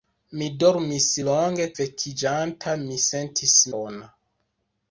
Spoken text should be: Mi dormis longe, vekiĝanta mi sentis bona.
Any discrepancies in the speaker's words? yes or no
no